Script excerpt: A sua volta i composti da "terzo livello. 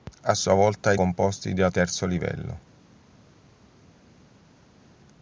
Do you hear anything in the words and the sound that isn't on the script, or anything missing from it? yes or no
no